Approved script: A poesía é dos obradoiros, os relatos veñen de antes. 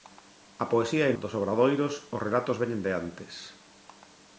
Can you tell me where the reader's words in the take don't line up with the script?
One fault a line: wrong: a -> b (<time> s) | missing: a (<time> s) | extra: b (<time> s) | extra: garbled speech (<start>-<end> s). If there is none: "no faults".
no faults